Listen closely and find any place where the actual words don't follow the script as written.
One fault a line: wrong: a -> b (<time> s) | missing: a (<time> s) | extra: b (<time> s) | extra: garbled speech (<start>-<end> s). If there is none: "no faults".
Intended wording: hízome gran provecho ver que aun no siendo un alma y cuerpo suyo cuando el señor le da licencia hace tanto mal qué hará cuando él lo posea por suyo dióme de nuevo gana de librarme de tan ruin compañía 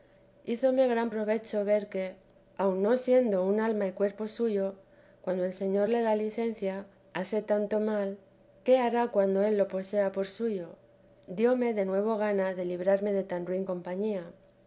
no faults